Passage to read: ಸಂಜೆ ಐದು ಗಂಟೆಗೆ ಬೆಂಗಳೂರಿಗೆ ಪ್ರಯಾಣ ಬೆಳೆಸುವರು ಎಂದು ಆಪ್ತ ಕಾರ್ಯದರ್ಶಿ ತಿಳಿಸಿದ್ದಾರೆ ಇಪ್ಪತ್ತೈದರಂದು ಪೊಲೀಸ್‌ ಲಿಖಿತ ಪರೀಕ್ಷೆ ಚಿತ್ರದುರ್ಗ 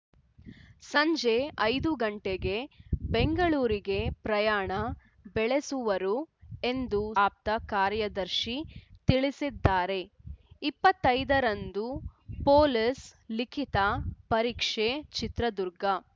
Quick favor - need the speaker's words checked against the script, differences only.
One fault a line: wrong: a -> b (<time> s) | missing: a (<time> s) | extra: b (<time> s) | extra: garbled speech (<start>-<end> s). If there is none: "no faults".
no faults